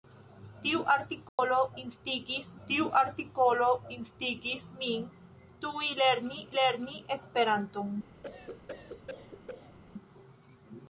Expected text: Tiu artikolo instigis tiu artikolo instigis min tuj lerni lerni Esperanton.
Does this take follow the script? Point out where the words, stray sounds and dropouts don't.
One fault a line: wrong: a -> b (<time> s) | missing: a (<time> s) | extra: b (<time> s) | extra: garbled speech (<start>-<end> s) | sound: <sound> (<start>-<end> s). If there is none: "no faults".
sound: dropout (1.3-1.4 s)
sound: cough (8.2-9.8 s)